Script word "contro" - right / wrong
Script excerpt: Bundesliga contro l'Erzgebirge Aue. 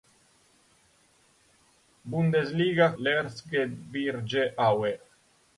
wrong